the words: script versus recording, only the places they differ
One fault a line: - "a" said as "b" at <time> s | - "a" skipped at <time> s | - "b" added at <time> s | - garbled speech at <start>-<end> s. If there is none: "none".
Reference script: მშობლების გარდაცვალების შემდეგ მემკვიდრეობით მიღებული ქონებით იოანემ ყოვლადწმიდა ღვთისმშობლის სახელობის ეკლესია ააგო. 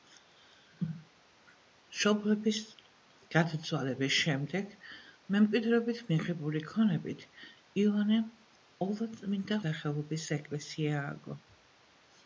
- "ღვთისმშობლის" skipped at 9.6 s